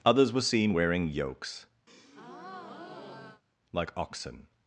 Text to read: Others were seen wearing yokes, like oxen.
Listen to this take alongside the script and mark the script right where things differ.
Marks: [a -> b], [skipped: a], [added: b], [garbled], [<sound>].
Others were seen wearing yokes, [breath] like oxen.